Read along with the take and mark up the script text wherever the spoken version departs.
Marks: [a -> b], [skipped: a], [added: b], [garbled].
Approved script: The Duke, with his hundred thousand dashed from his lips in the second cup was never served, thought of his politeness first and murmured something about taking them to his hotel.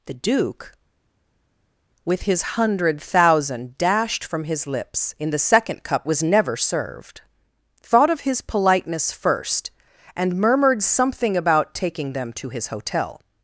The Duke, with his hundred thousand dashed from his lips in the second cup was never served, thought of his politeness first and murmured something about taking them to his hotel.